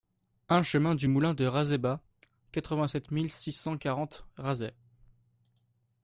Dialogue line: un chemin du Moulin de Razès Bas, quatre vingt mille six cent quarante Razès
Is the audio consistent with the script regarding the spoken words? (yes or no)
no